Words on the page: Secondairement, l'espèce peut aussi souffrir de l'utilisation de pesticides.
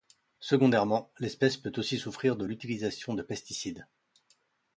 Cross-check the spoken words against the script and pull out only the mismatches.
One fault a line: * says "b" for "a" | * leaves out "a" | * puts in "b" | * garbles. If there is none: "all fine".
all fine